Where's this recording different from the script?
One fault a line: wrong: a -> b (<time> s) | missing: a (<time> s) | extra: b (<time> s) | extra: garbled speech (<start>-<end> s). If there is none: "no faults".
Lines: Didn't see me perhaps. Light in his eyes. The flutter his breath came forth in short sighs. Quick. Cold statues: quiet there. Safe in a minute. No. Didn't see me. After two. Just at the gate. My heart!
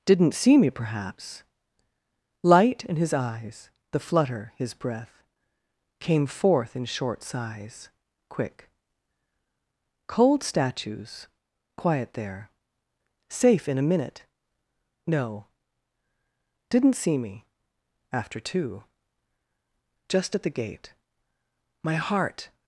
no faults